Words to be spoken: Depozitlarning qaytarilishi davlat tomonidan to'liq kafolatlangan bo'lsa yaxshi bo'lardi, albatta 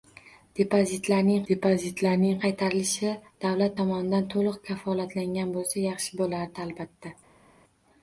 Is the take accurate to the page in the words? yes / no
no